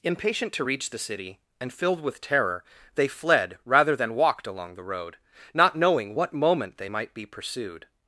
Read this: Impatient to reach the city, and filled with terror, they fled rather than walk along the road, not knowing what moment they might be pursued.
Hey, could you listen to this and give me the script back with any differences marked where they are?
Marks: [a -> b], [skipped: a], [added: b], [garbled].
Impatient to reach the city, and filled with terror, they fled rather than [walk -> walked] along the road, not knowing what moment they might be pursued.